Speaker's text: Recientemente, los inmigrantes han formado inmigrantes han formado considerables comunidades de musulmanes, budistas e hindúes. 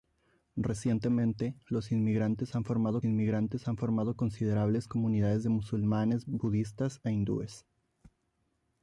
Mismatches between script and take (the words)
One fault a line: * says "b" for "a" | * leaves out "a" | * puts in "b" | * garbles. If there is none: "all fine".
all fine